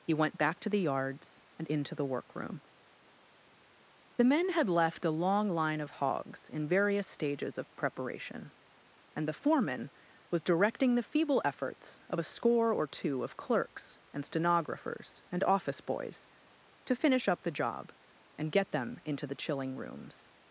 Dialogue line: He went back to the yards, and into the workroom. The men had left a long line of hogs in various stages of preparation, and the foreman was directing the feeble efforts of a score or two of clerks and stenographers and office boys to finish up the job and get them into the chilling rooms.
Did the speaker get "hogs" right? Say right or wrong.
right